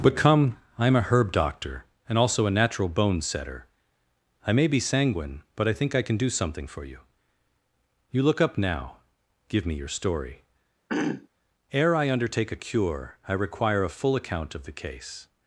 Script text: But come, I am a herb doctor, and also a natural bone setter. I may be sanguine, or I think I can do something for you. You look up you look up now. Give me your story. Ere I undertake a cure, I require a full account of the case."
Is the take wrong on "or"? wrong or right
wrong